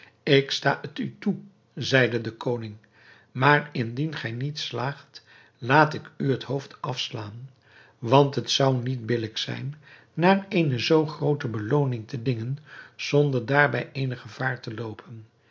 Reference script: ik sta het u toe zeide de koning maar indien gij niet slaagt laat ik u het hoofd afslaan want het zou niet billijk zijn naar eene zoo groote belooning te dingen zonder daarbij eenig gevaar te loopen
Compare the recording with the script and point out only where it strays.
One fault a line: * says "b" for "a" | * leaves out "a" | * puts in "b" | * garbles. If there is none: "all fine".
all fine